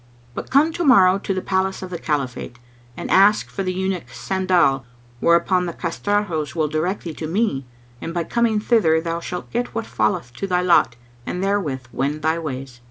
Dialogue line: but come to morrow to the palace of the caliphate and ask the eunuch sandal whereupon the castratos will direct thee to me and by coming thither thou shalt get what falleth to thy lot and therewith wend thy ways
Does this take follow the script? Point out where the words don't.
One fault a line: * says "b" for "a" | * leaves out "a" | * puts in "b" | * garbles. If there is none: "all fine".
* puts in "for"